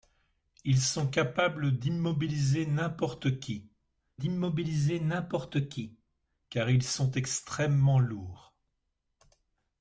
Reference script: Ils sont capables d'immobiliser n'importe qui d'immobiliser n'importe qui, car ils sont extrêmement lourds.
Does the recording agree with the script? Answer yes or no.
yes